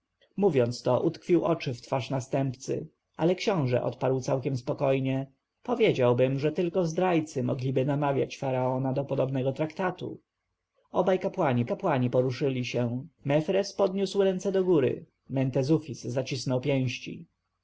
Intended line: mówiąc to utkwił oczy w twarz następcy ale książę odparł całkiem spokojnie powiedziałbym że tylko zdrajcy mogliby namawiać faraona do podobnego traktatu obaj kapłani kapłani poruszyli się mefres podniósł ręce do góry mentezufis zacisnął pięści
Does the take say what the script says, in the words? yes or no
yes